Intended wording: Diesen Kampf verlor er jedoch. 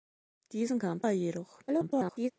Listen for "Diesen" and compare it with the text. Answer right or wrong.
right